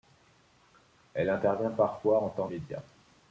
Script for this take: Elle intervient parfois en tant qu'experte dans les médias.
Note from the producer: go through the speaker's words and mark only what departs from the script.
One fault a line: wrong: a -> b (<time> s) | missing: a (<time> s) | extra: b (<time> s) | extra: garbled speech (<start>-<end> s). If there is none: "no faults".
missing: qu'experte dans les (2.5 s)